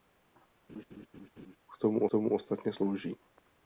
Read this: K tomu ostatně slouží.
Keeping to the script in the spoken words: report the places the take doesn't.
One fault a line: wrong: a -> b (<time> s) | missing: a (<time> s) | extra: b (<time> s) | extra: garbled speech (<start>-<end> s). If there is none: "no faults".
extra: tomu (2.1 s)